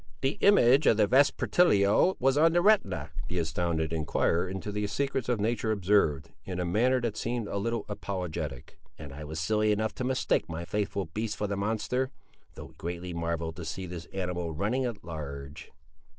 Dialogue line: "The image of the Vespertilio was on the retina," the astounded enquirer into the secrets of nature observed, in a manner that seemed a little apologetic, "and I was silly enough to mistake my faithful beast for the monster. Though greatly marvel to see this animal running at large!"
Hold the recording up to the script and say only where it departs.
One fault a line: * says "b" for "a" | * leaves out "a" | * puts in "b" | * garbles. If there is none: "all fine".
all fine